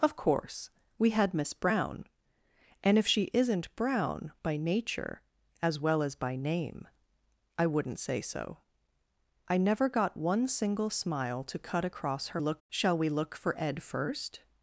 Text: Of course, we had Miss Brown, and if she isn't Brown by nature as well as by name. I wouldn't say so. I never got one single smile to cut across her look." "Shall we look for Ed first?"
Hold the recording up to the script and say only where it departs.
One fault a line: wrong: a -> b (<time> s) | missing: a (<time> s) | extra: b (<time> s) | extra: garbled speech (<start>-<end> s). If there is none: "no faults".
no faults